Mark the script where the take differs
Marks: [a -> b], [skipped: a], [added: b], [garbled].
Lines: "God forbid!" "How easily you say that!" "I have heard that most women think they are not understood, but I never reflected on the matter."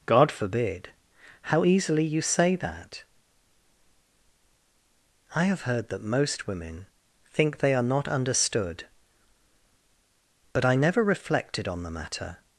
"God forbid!" "How easily you say that!" "I have heard that most women think they are not understood, but I never reflected on the matter."